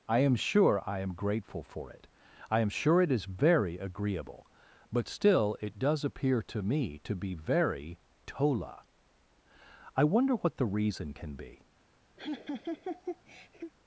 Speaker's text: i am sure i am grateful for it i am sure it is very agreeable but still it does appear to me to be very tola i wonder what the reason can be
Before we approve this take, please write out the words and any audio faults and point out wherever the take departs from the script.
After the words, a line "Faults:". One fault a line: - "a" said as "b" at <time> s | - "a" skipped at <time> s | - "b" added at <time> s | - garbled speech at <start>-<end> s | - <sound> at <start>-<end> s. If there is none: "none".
i am sure i am grateful for it i am sure it is very agreeable but still it does appear to me to be very tola i wonder what the reason can be
Faults:
- laugh at 12.2-13.7 s